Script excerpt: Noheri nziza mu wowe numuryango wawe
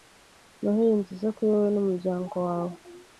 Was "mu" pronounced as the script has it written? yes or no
no